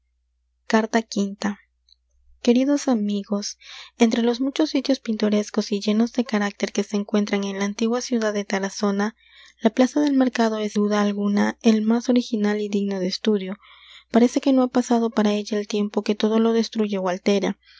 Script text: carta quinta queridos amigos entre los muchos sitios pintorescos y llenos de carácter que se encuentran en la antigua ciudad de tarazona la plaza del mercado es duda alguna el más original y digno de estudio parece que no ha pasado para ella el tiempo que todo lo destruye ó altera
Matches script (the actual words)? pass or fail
pass